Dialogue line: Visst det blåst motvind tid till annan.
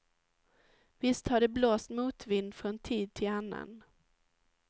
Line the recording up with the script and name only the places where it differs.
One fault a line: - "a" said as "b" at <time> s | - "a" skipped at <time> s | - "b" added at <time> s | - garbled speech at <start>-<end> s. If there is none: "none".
- "har" added at 1.3 s
- "från" added at 2.5 s